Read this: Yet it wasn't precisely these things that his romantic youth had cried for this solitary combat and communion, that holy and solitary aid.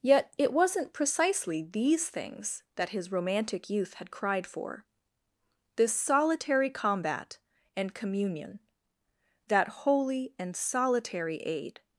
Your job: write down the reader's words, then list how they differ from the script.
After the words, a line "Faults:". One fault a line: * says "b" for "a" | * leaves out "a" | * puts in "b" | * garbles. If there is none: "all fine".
Yet it wasn't precisely these things that his romantic youth had cried for this solitary combat and communion, that holy and solitary aid.
Faults:
all fine